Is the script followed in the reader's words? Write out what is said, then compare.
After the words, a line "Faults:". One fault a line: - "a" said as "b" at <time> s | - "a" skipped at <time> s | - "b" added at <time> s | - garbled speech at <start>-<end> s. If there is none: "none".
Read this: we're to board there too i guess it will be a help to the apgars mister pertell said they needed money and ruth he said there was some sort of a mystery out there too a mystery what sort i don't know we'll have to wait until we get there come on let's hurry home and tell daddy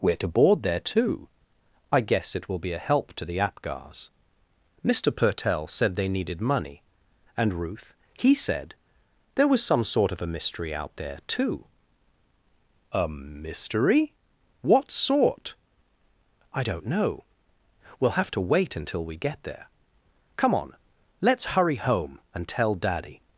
we're to board there too i guess it will be a help to the apgars mister pertell said they needed money and ruth he said there was some sort of a mystery out there too a mystery what sort i don't know we'll have to wait until we get there come on let's hurry home and tell daddy
Faults:
none